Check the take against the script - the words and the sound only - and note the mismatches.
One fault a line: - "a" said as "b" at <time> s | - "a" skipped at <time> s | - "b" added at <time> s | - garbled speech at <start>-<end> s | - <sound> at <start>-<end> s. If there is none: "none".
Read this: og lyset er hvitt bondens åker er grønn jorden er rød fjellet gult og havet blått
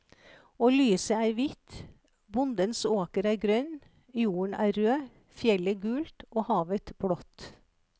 none